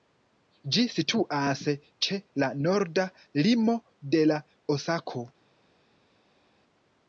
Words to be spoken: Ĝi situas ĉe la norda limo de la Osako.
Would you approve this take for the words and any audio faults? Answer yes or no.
yes